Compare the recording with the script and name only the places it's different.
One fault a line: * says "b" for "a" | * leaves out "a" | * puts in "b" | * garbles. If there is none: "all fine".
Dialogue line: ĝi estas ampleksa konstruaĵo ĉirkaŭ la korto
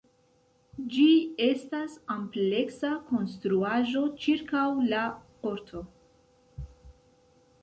all fine